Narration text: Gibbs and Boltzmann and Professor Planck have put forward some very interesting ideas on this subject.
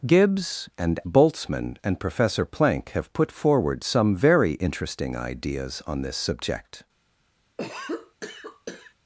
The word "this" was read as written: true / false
true